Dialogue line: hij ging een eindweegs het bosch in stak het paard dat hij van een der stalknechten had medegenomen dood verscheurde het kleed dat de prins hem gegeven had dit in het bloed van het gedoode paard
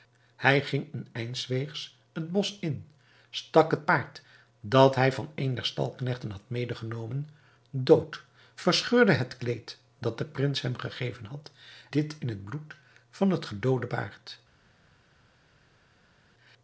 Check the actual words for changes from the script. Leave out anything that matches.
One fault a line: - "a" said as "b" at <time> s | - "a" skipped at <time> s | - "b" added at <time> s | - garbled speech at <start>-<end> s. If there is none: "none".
none